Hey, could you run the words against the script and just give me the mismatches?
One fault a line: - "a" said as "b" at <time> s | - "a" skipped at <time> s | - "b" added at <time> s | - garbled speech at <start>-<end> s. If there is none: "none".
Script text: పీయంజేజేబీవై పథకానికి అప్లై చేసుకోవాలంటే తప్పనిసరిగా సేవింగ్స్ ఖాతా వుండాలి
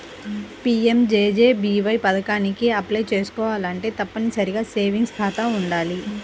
none